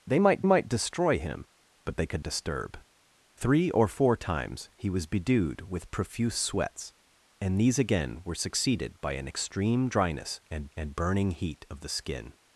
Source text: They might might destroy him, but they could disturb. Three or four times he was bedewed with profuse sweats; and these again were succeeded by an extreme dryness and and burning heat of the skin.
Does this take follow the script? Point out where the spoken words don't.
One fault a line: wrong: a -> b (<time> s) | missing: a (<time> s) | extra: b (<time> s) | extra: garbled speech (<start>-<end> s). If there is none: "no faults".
no faults